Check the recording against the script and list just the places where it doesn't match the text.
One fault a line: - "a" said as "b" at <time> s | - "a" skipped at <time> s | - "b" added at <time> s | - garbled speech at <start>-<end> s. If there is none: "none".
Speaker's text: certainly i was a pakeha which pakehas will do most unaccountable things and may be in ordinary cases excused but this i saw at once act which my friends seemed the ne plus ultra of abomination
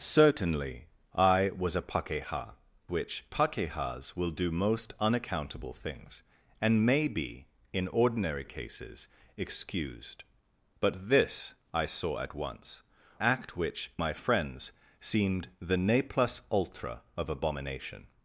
none